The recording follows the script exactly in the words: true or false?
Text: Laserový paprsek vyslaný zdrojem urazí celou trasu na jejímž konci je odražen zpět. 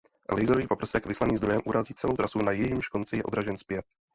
true